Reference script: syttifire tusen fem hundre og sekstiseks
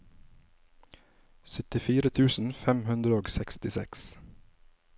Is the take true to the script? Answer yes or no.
yes